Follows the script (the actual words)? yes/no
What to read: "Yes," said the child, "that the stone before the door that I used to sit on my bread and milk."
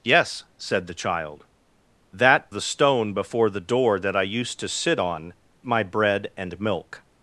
yes